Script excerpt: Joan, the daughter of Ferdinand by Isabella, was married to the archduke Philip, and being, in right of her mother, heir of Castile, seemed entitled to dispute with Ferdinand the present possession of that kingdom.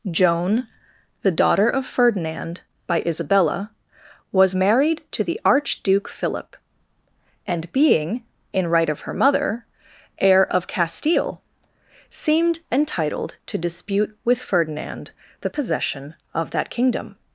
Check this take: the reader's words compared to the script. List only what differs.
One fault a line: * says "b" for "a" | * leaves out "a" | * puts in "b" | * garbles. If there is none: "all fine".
* leaves out "present"